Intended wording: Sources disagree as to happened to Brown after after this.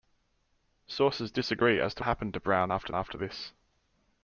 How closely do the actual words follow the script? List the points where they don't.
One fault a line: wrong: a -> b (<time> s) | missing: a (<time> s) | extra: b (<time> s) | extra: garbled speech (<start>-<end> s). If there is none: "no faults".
no faults